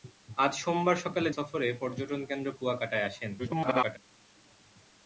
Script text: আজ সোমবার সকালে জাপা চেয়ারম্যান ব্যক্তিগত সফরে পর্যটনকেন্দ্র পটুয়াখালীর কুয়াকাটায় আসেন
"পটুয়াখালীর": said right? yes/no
no